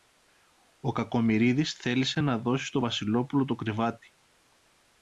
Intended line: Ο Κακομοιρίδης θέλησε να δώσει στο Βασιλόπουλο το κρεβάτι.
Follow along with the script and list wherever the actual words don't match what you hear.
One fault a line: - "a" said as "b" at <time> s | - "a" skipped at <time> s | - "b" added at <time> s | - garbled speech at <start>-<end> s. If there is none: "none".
none